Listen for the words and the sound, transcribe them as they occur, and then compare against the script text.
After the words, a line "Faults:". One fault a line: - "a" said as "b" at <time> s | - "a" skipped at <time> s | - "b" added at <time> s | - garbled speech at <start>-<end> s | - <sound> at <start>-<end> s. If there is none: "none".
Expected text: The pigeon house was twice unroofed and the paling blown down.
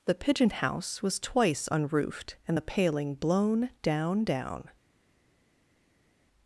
The pigeon house was twice unroofed and the paling blown down down.
Faults:
- "down" added at 4.2 s